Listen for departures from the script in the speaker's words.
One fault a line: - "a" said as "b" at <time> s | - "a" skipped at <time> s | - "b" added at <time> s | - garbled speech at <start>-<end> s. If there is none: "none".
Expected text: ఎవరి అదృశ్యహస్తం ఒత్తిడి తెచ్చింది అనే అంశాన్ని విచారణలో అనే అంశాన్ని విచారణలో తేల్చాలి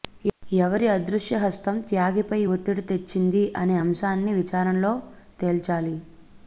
- "త్యాగిపై" added at 1.9 s
- "అనే అంశాన్ని విచారణలో" skipped at 4.9 s